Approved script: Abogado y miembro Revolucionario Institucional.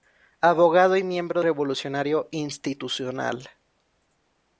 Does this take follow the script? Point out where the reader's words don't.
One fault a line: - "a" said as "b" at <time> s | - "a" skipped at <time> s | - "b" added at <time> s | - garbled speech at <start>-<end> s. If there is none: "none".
none